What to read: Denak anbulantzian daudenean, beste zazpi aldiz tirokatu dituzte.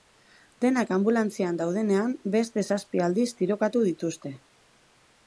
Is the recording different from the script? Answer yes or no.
no